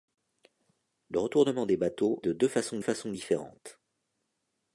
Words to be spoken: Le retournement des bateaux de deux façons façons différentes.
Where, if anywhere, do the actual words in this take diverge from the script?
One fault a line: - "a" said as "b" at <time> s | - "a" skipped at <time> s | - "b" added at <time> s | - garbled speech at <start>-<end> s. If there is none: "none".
none